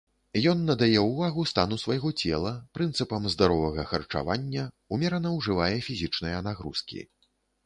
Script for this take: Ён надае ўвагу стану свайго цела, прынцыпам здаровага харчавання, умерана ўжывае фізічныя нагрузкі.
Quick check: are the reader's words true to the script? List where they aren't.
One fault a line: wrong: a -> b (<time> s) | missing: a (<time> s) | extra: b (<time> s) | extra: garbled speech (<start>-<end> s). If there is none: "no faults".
no faults